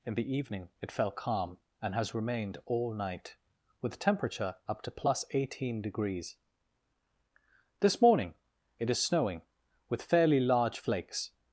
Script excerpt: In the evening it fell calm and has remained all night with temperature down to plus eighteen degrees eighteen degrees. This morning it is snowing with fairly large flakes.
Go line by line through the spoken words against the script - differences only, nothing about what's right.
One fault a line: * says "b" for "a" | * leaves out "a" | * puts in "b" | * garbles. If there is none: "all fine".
* says "up" for "down"
* leaves out "eighteen degrees"